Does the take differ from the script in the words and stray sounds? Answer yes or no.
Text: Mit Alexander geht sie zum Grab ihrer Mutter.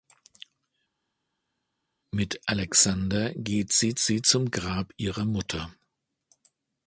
yes